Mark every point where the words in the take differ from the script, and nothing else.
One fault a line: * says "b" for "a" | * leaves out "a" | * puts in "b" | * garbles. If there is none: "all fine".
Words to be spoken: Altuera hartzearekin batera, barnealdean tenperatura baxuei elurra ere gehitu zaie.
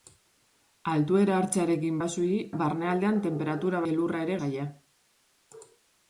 * says "baxuei" for "batera"
* leaves out "baxuei"
* leaves out "gehitu"